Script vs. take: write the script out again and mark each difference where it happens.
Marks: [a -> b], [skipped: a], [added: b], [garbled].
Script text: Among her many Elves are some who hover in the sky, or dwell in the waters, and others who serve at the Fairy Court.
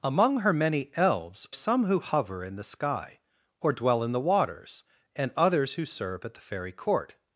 Among her many Elves [skipped: are] some who hover in the sky, or dwell in the waters, and others who serve at the Fairy Court.